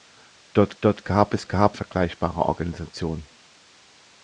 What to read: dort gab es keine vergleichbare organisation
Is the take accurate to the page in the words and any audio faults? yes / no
no